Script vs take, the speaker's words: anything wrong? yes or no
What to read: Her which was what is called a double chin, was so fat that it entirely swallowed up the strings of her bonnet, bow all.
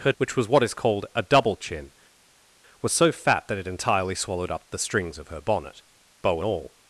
no